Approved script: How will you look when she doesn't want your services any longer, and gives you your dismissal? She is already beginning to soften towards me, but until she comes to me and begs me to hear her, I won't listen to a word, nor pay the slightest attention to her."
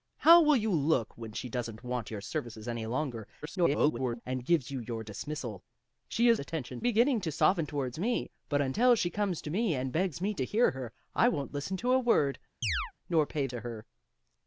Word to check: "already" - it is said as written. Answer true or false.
false